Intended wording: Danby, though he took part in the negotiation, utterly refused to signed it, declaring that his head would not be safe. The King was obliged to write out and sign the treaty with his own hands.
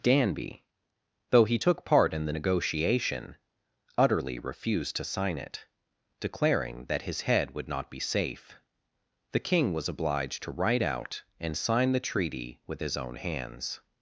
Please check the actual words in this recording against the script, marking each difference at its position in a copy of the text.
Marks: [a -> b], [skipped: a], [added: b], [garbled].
Danby, though he took part in the negotiation, utterly refused to [signed -> sign] it, declaring that his head would not be safe. The King was obliged to write out and sign the treaty with his own hands.